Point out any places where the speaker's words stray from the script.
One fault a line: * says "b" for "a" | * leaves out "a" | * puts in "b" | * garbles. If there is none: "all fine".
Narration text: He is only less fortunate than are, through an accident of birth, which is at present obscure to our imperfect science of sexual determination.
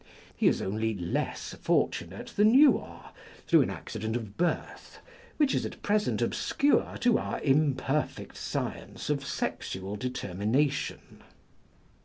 * puts in "you"